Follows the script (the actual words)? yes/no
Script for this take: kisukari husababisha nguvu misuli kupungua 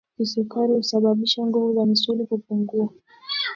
no